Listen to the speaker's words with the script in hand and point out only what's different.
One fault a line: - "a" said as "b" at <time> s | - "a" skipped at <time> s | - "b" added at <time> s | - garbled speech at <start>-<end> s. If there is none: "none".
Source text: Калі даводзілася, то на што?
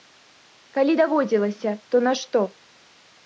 none